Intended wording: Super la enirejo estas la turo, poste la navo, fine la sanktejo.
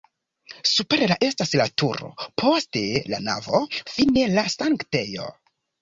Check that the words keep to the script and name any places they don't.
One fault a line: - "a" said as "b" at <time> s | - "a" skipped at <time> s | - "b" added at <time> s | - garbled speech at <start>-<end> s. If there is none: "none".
- "enirejo" skipped at 1.2 s